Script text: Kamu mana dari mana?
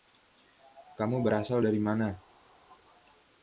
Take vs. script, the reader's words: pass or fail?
fail